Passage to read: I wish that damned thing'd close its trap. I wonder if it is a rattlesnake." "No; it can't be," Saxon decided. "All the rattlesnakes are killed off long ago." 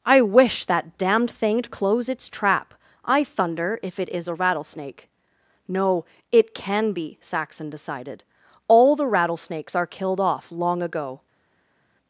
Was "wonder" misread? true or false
true